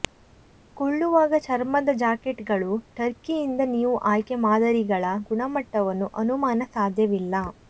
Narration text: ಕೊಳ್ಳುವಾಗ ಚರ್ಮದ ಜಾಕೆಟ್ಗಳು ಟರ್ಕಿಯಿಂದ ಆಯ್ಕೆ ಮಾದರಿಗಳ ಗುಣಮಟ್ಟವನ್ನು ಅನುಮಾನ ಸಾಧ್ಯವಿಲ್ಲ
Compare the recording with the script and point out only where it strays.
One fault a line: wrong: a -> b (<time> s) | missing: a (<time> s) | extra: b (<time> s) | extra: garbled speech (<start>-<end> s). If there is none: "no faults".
extra: ನೀವು (3.7 s)